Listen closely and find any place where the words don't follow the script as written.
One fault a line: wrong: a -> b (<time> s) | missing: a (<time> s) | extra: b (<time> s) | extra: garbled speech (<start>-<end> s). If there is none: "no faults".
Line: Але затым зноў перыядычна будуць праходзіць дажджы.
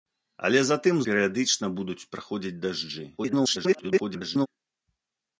missing: зноў (0.9 s)
extra: garbled speech (3.2-4.5 s)